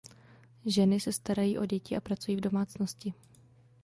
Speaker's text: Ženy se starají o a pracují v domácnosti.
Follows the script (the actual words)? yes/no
no